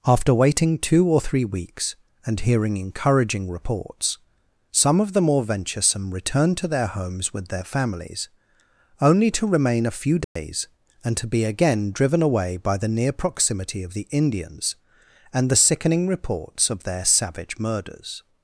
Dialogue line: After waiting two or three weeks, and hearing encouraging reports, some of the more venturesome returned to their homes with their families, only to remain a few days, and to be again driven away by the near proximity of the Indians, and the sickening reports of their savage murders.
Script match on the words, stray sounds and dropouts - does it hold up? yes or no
no